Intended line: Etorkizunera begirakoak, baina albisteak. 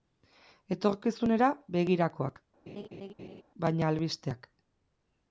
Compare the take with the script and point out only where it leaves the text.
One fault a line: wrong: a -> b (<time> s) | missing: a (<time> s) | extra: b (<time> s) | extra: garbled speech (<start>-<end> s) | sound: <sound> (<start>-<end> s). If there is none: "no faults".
sound: laugh (2.7-3.4 s)